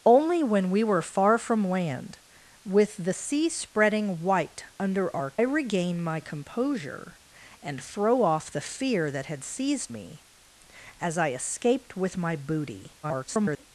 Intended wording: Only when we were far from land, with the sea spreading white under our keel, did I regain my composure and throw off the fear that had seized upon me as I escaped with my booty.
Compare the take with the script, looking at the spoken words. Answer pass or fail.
fail